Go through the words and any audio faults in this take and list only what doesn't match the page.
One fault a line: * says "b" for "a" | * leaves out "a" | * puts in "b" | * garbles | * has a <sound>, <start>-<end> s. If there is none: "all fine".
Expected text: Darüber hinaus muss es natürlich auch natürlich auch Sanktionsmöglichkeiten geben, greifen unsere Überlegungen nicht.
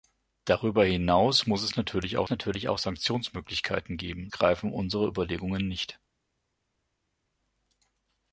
all fine